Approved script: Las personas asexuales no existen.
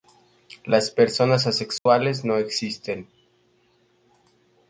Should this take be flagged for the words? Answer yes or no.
no